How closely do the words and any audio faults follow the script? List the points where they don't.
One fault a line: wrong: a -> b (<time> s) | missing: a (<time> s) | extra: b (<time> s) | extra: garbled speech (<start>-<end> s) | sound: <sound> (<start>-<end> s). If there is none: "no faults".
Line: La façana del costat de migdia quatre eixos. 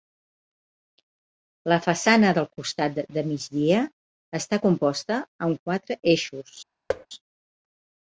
extra: està composta amb (4.4 s)
sound: thud (6.9-7.1 s)